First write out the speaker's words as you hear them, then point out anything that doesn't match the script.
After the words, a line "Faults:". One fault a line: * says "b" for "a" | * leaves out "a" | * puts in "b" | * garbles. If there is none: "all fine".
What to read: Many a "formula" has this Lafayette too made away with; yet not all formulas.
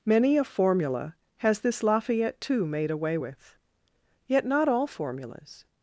Many a "formula" has this Lafayette too made away with; yet not all formulas.
Faults:
all fine